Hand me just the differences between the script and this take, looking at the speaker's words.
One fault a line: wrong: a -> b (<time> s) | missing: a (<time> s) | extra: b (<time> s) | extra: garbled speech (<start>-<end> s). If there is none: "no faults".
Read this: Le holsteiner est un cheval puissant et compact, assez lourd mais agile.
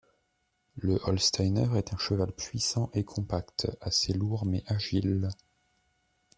no faults